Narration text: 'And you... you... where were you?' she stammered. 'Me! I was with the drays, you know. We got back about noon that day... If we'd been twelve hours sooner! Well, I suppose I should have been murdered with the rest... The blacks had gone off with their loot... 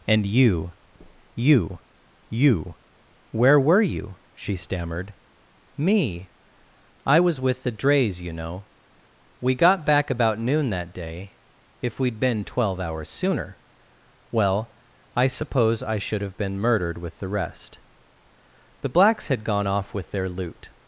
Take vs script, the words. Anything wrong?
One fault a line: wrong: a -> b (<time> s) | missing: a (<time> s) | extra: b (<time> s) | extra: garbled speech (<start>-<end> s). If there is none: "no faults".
extra: you (2.3 s)